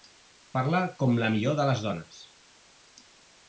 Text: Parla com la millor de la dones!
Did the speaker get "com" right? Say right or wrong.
right